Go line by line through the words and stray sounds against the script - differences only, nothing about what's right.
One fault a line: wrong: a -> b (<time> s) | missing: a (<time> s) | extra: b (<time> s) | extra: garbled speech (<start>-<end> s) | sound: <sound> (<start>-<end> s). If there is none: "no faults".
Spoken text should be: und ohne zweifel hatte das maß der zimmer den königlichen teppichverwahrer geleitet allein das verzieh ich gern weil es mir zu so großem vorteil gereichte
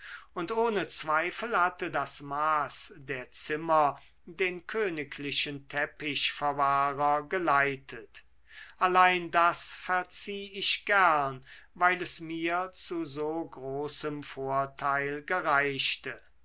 no faults